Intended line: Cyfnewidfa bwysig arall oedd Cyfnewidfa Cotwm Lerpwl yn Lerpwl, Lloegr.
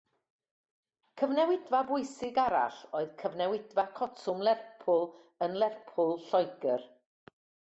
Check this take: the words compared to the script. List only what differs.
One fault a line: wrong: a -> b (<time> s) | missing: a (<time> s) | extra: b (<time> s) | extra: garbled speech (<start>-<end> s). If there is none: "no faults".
no faults